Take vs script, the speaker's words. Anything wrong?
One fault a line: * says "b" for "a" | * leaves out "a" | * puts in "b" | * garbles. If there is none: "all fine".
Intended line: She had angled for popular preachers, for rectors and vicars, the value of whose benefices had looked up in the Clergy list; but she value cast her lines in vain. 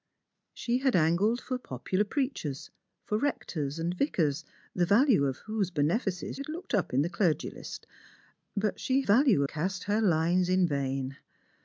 all fine